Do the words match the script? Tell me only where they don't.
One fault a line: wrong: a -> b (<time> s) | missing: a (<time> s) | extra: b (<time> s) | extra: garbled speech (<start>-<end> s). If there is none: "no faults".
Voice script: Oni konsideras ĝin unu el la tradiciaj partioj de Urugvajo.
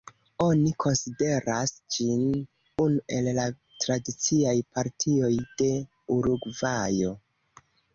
no faults